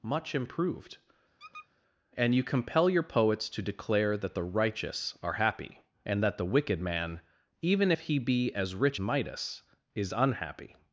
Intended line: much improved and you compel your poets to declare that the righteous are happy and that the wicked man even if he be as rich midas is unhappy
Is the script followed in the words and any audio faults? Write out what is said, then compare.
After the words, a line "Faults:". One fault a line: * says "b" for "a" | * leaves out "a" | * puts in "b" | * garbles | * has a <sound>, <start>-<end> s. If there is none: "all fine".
much improved and you compel your poets to declare that the righteous are happy and that the wicked man even if he be as rich midas is unhappy
Faults:
* has a squeak, 1.4-1.7 s